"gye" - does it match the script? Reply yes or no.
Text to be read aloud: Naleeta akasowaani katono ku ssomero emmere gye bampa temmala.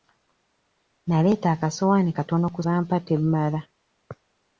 no